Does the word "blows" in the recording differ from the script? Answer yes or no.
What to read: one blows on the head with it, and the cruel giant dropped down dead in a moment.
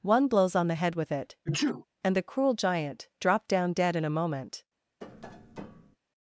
no